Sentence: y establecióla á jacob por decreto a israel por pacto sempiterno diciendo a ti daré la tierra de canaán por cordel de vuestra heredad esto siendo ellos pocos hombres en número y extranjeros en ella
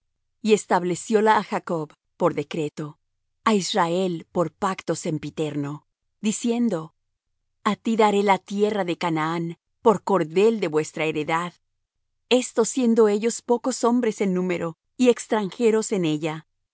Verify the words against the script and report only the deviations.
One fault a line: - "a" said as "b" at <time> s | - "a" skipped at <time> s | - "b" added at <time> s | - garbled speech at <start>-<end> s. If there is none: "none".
none